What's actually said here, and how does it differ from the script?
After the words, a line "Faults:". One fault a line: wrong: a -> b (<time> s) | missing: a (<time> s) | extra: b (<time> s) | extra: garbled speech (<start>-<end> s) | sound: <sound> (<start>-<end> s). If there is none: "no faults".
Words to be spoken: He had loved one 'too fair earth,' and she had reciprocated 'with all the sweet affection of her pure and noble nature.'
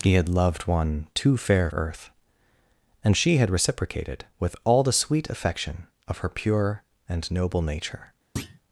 He had loved one 'too fair earth,' and she had reciprocated 'with all the sweet affection of her pure and noble nature.'
Faults:
sound: thud (8.4-8.6 s)